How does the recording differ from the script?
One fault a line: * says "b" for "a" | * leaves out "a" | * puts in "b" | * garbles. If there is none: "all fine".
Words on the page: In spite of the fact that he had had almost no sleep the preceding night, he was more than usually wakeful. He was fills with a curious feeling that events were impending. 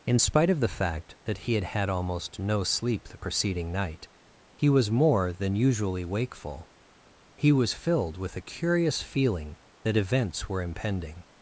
* says "filled" for "fills"